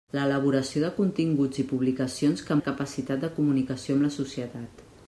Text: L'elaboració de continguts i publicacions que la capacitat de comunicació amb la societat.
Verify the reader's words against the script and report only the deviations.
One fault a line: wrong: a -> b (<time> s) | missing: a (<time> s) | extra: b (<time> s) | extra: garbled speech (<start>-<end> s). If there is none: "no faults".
no faults